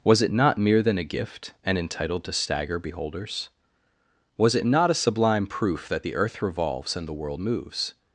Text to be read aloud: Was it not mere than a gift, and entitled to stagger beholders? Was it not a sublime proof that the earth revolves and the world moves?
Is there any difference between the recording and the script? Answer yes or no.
no